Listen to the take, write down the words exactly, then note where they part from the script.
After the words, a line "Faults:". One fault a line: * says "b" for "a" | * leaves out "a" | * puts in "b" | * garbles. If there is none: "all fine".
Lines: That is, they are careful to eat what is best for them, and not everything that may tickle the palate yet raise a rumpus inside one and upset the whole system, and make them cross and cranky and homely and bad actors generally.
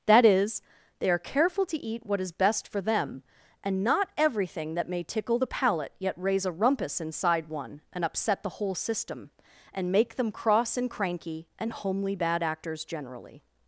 That is, they are careful to eat what is best for them, and not everything that may tickle the palate yet raise a rumpus inside one and upset the whole system, and make them cross and cranky and homely bad actors generally.
Faults:
* leaves out "and"